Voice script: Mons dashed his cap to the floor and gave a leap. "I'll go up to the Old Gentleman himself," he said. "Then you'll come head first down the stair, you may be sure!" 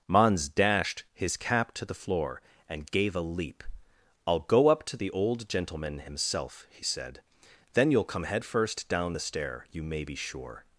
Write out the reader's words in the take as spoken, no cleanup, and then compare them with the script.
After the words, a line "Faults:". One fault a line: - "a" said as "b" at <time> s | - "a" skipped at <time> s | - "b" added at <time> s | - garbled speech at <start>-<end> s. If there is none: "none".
Mons dashed his cap to the floor and gave a leap. "I'll go up to the Old Gentleman himself," he said. "Then you'll come head first down the stair, you may be sure!"
Faults:
none